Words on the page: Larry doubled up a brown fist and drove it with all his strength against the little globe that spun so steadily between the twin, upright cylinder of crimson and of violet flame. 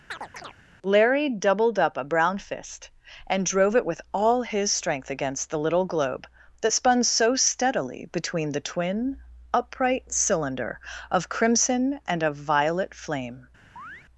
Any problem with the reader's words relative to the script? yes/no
no